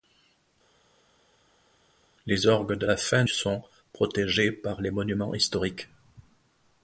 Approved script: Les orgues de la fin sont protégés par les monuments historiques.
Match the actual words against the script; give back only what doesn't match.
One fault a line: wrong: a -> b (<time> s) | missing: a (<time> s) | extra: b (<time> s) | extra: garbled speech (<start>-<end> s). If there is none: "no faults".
no faults